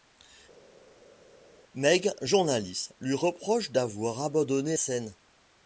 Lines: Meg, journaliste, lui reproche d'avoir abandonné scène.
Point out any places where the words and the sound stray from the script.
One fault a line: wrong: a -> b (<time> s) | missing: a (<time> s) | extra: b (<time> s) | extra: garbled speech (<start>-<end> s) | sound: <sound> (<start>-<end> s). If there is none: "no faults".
no faults